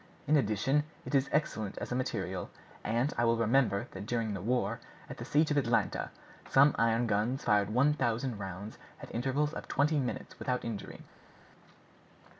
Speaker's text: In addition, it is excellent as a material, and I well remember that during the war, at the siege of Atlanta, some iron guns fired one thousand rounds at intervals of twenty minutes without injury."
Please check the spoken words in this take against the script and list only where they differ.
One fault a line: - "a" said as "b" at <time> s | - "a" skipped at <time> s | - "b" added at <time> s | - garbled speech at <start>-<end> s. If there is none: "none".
none